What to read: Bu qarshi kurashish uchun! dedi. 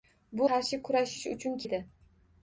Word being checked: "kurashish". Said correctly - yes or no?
yes